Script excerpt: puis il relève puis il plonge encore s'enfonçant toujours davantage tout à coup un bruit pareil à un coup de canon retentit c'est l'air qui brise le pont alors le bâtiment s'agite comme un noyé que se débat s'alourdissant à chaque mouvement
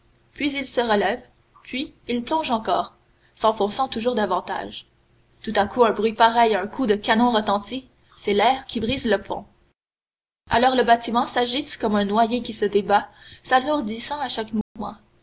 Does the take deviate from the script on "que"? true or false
true